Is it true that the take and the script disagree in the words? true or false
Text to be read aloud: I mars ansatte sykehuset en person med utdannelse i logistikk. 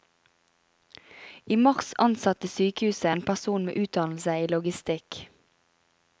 false